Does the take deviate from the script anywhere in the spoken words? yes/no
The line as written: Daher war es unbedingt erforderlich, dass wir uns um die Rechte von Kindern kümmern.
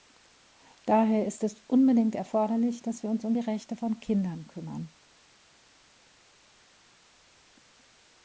yes